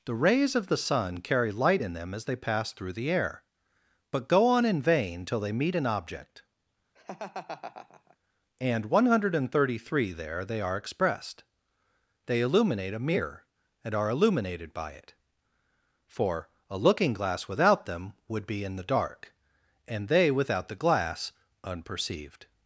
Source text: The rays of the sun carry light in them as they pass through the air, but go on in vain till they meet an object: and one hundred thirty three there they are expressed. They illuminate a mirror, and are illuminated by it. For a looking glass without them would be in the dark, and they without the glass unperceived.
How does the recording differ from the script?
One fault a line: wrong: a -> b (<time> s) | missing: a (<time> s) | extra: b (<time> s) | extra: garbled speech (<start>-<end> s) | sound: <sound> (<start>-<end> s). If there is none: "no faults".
sound: laugh (7.0-8.2 s)